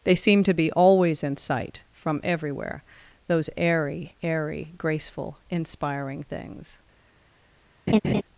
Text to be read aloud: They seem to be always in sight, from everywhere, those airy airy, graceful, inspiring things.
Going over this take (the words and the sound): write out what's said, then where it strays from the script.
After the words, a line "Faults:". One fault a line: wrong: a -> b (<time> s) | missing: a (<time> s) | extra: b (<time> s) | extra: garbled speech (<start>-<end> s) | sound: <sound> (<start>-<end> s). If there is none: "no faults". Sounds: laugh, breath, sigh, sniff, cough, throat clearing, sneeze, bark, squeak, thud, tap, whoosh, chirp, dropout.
They seem to be always in sight, from everywhere, those airy airy, graceful, inspiring things.
Faults:
sound: laugh (7.9-8.2 s)